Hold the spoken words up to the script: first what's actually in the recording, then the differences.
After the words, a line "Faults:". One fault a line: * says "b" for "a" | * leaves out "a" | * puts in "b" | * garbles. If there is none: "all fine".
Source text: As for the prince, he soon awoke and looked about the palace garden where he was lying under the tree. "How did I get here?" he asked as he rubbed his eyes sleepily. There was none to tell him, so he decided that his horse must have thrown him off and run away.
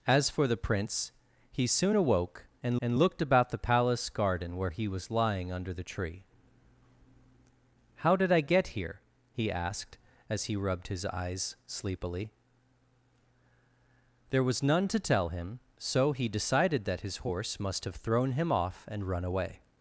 As for the prince, he soon awoke and and looked about the palace garden where he was lying under the tree. "How did I get here?" he asked as he rubbed his eyes sleepily. There was none to tell him, so he decided that his horse must have thrown him off and run away.
Faults:
* puts in "and"